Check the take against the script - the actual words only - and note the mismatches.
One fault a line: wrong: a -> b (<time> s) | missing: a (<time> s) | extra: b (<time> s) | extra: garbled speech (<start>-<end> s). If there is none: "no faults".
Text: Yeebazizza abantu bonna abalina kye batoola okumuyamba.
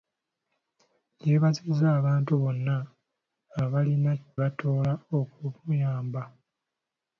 missing: kye (4.1 s)